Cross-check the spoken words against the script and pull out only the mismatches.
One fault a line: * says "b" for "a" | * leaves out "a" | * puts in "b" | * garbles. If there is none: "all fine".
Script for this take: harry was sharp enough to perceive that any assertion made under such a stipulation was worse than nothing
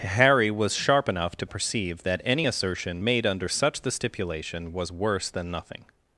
* says "the" for "a"